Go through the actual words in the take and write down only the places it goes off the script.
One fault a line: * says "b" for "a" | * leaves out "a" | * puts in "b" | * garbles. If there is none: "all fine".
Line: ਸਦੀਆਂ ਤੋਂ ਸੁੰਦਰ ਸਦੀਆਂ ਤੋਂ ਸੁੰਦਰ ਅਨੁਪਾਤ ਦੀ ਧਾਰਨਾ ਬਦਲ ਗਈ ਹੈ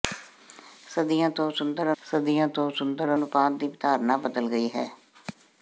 all fine